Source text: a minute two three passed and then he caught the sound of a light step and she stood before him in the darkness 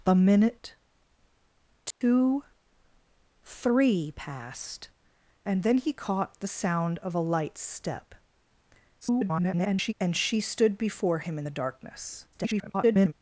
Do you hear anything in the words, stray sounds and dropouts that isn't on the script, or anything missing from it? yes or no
yes